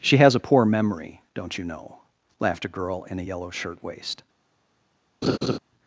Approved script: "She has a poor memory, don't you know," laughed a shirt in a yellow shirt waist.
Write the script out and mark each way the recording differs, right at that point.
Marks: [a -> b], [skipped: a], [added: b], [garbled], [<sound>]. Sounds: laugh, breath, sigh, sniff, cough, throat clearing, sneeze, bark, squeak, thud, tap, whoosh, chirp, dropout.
"She has a poor memory, don't you know," laughed a [shirt -> girl] in a yellow shirt waist. [laugh]